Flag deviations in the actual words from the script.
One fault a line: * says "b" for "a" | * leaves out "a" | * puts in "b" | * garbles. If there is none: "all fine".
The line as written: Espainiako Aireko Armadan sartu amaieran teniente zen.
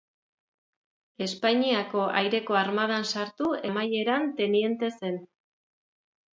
all fine